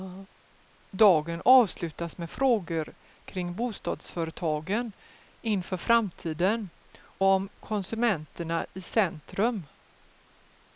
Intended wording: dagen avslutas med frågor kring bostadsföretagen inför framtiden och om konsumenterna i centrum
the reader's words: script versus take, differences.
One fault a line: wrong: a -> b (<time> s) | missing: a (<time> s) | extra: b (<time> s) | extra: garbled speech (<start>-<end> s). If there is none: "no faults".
missing: och (6.7 s)